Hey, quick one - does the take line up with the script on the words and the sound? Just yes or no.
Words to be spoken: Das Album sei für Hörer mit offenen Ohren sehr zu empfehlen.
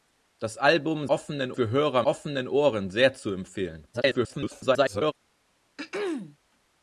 no